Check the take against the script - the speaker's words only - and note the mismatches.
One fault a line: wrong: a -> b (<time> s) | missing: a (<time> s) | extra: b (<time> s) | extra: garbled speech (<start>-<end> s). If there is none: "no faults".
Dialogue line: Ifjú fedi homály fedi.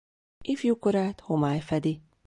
wrong: fedi -> korát (0.8 s)